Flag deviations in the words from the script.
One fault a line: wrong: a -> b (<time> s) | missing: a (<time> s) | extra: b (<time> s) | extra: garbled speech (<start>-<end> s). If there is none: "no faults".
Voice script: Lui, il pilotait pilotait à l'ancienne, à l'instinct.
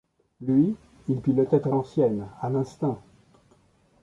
missing: pilotait (1.7 s)